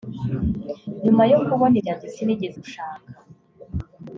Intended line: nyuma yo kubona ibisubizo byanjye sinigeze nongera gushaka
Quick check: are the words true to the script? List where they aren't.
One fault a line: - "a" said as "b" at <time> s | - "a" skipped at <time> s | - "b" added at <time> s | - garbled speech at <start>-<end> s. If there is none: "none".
- "ibisubizo" skipped at 1.8 s
- "nongera" skipped at 2.6 s